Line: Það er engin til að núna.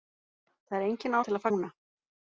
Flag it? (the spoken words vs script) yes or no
no